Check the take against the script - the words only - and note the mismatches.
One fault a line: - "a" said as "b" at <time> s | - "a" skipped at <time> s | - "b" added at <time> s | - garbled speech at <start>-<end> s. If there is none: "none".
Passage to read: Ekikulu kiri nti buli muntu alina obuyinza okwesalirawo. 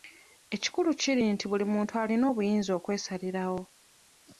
none